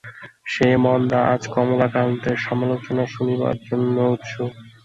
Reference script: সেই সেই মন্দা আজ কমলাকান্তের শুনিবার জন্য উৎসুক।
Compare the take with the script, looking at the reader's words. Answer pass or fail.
fail